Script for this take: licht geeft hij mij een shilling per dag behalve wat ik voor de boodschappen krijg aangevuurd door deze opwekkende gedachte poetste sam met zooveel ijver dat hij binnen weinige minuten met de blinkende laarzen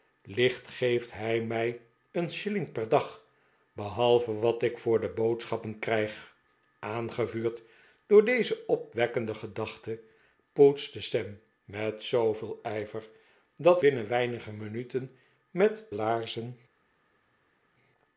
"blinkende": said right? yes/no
no